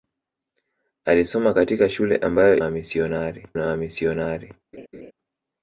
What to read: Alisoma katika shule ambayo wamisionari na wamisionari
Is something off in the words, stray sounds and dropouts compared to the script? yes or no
yes